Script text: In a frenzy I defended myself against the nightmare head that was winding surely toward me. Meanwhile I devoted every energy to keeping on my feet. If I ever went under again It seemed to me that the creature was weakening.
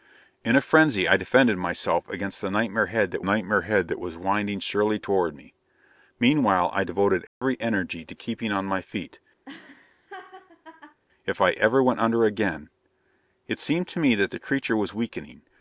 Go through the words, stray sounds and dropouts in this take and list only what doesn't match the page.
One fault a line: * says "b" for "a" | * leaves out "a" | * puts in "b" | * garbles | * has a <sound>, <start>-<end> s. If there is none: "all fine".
* puts in "nightmare head that"
* has a dropout, 7.3-7.4 s
* has a laugh, 9.5-11.0 s